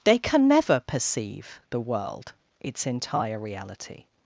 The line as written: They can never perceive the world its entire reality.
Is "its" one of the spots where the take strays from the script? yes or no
no